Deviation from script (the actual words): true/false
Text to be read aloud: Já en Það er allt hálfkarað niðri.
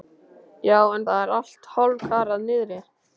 false